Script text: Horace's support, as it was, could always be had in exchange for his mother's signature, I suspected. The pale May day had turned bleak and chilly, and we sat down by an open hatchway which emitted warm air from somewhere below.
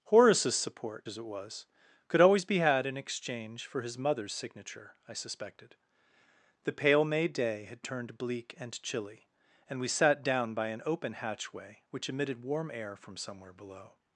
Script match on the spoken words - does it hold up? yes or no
yes